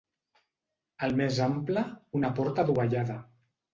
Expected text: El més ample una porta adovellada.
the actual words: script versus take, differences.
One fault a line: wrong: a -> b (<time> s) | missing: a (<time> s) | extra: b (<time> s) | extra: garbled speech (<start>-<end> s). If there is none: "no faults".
no faults